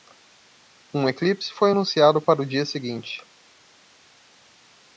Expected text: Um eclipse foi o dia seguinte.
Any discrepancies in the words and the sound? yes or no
yes